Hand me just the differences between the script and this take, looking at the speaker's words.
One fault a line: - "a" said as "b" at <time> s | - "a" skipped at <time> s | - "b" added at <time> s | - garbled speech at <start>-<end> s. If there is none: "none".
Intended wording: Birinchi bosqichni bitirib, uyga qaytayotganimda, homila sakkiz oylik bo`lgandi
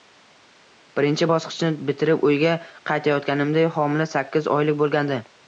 none